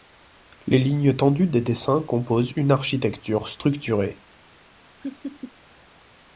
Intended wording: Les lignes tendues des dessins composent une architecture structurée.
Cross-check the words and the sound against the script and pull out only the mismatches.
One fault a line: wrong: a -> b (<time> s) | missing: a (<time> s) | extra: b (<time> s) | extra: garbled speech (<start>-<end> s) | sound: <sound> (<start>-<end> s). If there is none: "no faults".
sound: laugh (5.0-5.5 s)